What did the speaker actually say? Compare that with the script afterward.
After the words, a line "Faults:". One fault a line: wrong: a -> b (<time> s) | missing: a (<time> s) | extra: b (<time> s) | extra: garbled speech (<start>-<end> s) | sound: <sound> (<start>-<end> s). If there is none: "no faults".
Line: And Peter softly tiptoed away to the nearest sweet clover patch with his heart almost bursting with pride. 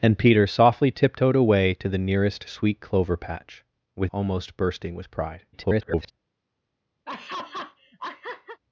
And Peter softly tiptoed away to the nearest sweet clover patch with almost bursting with pride. [garbled]
Faults:
missing: his heart (4.1 s)
extra: garbled speech (5.5-6.1 s)
sound: laugh (7.1-8.6 s)